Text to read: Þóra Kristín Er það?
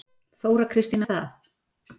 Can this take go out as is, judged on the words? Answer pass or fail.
pass